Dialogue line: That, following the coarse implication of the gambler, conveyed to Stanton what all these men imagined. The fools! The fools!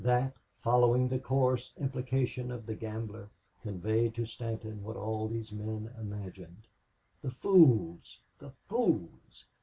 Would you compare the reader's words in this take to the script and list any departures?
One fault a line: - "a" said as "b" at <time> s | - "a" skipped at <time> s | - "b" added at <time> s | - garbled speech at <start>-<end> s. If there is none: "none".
none